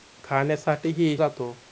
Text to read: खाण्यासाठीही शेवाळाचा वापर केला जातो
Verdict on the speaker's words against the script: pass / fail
fail